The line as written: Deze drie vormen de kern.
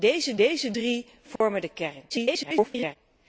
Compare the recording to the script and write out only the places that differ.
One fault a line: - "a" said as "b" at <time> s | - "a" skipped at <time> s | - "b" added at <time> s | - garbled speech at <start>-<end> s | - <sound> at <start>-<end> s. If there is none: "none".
- "deze" added at 0.4 s
- dropout at 1.4-1.4 s
- garbled speech at 2.1-3.0 s